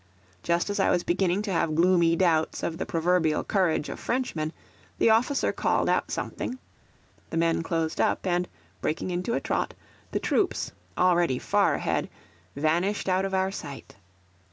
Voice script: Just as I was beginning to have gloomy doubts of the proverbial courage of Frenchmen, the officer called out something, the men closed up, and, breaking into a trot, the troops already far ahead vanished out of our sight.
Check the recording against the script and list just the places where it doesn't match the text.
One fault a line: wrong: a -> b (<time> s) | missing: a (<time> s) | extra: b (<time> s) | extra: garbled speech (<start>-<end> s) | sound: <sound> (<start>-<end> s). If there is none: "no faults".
no faults